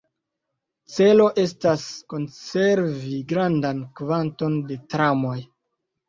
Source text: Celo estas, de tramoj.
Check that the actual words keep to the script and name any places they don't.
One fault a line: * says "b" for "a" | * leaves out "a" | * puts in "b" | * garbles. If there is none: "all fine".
* puts in "konservi grandan kvanton"